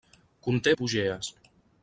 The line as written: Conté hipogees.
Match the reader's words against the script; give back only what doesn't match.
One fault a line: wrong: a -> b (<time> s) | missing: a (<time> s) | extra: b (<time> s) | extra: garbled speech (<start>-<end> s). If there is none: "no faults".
no faults